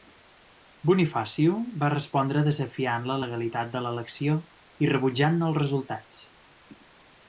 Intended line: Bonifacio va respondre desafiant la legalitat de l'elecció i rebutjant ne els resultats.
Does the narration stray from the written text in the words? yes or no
no